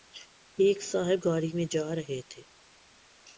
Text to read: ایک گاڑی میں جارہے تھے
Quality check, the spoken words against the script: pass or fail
fail